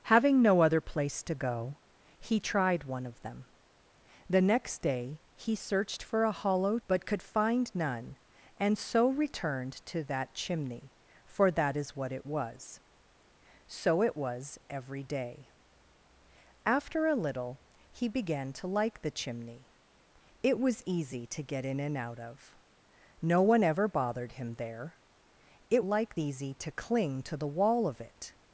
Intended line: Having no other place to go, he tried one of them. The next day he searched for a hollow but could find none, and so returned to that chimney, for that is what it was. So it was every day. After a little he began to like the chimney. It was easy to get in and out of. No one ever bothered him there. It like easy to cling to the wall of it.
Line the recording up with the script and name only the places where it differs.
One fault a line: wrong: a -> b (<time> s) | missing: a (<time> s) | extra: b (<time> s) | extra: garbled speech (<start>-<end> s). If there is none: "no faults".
no faults